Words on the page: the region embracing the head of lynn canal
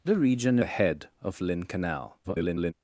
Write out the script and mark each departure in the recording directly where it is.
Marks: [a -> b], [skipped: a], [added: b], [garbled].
the region [skipped: embracing] the head of lynn canal [garbled]